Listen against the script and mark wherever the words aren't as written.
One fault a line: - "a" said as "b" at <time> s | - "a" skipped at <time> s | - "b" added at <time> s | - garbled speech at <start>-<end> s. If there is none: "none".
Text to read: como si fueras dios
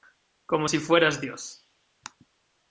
none